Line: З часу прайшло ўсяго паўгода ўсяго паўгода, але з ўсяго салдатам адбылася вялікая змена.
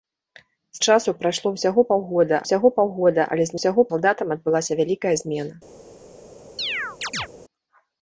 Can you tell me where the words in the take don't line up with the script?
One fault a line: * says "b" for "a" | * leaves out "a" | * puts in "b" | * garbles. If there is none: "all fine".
all fine